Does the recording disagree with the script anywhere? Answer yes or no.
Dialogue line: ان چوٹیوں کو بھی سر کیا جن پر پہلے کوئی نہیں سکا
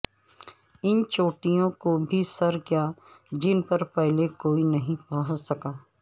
yes